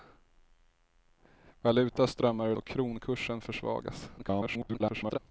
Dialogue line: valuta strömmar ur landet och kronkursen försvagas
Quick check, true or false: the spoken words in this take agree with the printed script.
false